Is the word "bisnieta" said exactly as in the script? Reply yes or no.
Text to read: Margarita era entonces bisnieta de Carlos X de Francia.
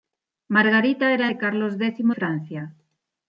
no